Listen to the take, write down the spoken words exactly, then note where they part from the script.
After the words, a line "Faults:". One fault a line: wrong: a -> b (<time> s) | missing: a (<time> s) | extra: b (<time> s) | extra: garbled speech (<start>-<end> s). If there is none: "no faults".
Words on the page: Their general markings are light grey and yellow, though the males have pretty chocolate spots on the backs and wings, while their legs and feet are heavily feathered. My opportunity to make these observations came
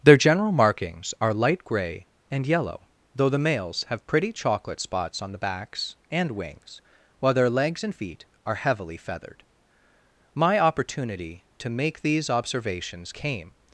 Their general markings are light grey and yellow, though the males have pretty chocolate spots on the backs and wings, while their legs and feet are heavily feathered. My opportunity to make these observations came
Faults:
no faults